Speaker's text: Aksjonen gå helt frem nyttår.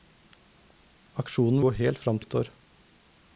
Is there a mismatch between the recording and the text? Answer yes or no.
no